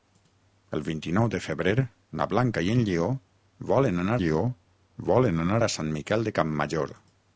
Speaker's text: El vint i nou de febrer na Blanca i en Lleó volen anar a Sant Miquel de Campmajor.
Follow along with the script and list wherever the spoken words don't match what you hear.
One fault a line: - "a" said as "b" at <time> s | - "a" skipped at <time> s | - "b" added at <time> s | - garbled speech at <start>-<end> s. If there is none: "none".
- "Lleó volen anar" added at 4.2 s